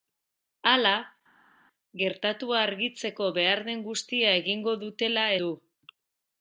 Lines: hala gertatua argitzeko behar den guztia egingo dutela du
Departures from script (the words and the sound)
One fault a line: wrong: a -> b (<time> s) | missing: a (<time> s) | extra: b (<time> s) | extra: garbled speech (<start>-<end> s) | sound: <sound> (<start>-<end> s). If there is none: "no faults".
no faults